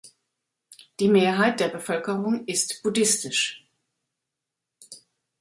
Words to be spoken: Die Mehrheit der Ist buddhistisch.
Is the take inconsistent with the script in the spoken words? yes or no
yes